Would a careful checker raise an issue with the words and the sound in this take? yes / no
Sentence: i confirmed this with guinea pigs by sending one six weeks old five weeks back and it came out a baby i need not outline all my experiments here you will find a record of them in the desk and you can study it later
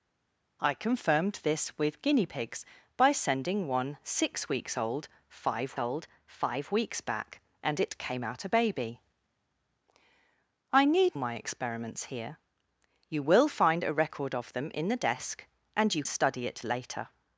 yes